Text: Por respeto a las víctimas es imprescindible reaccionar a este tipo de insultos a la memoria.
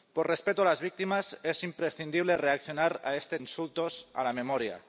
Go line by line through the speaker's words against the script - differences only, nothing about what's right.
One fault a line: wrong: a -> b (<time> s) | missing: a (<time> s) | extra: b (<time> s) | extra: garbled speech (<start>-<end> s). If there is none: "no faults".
missing: tipo de (3.4 s)